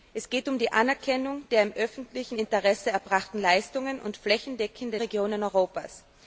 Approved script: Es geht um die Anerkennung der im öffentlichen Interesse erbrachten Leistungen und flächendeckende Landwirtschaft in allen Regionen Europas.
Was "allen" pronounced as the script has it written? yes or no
no